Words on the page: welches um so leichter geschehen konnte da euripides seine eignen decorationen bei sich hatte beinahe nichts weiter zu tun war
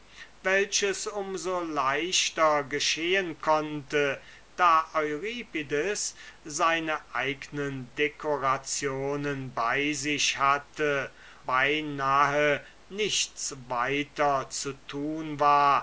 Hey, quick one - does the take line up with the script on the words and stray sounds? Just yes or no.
yes